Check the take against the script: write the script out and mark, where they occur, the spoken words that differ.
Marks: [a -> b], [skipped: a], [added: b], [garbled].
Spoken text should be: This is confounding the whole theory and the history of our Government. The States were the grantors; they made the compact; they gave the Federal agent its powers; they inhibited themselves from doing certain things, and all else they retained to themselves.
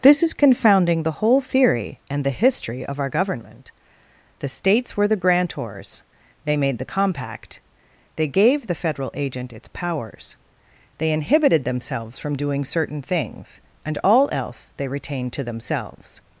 This is confounding the whole theory and the history of our Government. The States were the grantors; they made the compact; they gave the Federal agent its powers; they inhibited themselves from doing certain things, and all else they retained to themselves.